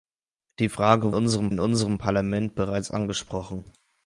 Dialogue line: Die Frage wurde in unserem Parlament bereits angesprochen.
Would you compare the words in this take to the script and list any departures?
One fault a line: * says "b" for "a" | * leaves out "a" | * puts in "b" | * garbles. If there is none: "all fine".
* says "unserem" for "wurde"